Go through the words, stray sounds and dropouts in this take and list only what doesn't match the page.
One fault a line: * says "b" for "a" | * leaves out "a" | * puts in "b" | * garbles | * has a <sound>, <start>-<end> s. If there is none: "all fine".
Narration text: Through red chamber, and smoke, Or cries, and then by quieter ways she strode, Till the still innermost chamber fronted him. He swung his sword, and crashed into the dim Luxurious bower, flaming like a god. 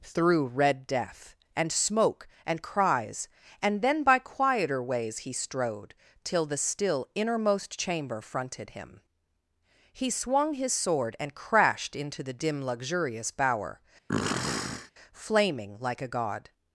* says "death" for "chamber"
* says "And" for "Or"
* says "he" for "she"
* has a sniff, 14.1-14.9 s